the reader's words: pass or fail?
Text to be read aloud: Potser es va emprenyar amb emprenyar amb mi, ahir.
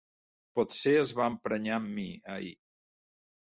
fail